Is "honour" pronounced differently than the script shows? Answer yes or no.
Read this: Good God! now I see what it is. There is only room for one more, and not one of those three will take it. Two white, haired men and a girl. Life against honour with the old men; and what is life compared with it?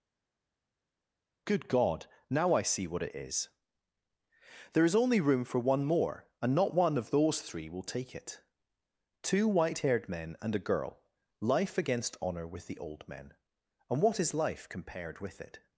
no